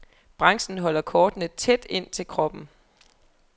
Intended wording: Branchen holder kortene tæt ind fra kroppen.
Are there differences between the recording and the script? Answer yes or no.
yes